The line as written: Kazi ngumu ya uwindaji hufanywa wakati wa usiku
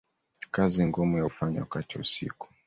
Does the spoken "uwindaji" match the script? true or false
false